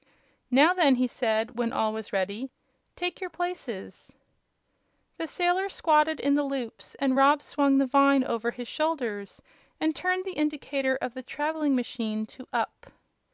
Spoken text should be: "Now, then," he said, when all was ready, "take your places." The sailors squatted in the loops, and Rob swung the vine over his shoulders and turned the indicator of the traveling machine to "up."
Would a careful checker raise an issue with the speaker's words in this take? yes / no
no